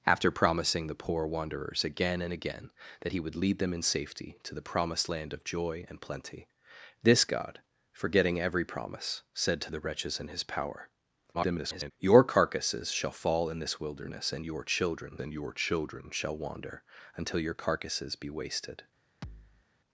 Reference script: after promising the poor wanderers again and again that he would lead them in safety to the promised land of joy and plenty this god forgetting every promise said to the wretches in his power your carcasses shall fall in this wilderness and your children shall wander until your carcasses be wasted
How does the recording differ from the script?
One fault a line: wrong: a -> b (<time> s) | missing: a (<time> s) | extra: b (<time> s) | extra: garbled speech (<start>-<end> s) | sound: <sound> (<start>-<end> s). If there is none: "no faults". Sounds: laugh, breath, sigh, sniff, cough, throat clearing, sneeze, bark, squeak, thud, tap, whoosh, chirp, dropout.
extra: garbled speech (11.3-11.9 s)
extra: and your children (15.2 s)
sound: thud (19.2-19.7 s)